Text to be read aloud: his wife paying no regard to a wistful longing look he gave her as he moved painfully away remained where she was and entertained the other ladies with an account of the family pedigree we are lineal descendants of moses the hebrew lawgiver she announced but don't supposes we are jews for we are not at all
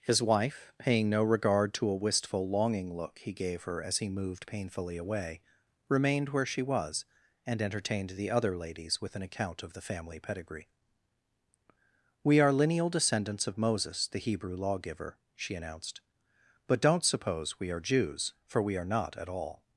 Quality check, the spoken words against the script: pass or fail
fail